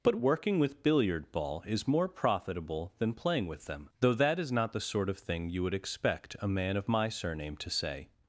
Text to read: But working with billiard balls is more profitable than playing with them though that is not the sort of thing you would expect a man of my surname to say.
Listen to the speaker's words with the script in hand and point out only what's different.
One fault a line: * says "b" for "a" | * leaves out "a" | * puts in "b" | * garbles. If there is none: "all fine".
* says "ball" for "balls"